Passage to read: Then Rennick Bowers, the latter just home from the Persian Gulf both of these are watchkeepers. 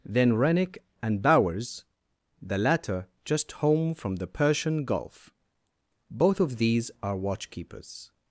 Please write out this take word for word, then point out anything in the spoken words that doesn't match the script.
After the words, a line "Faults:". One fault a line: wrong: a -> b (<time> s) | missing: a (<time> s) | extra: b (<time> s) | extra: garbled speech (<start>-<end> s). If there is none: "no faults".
Then Rennick and Bowers, the latter just home from the Persian Gulf both of these are watchkeepers.
Faults:
extra: and (1.0 s)